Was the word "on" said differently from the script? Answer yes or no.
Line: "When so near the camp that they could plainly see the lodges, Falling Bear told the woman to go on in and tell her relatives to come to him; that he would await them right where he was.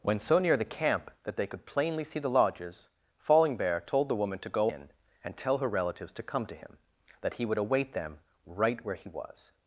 yes